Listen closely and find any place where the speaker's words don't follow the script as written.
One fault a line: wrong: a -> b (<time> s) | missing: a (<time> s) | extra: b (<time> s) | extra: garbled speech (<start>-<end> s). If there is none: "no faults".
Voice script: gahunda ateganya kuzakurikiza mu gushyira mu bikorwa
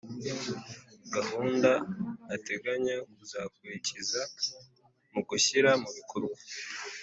no faults